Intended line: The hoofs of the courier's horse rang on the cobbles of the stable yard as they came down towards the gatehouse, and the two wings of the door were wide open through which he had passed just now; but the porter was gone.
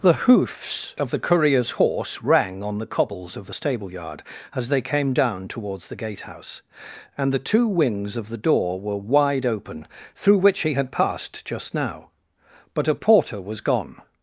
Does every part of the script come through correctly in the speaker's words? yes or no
no